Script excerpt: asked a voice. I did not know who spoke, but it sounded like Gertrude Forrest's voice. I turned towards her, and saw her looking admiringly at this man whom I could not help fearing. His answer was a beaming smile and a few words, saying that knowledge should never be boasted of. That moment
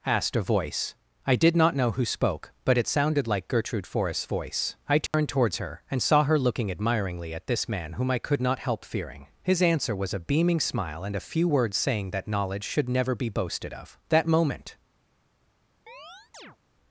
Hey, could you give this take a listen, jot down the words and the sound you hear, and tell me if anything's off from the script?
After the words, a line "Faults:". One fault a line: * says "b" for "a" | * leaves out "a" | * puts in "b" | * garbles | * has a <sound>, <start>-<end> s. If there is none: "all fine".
asked a voice. I did not know who spoke, but it sounded like Gertrude Forrest's voice. I turned towards her, and saw her looking admiringly at this man whom I could not help fearing. His answer was a beaming smile and a few words, saying that knowledge should never be boasted of. That moment
Faults:
* has a dropout, 5.1-5.1 s
* has a chirp, 15.9-16.6 s